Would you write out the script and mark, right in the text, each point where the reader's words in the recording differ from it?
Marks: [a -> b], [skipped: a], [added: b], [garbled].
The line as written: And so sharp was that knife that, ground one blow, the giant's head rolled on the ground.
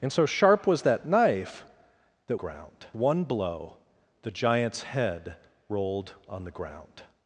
And so sharp was that knife that, ground one blow, the giant's head rolled on the ground.